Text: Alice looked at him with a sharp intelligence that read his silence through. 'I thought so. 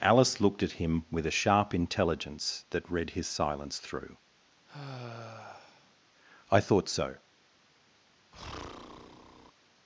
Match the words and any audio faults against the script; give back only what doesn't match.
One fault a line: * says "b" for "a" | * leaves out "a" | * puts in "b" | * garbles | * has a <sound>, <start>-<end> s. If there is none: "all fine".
* has a sigh, 4.7-6.0 s
* has a breath, 8.3-9.5 s